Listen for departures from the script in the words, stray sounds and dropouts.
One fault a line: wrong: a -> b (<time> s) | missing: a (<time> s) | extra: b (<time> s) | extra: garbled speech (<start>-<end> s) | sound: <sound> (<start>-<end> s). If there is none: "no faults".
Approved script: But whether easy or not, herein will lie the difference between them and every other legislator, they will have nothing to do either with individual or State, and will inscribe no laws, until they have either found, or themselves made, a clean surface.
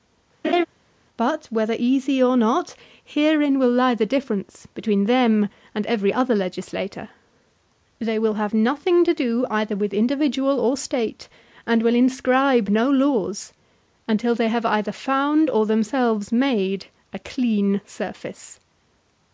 sound: laugh (0.4-0.7 s)